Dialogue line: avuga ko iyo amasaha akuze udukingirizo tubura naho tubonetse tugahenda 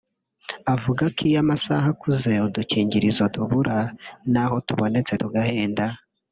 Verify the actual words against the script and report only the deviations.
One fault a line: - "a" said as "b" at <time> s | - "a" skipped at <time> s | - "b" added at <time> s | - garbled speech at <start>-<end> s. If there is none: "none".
none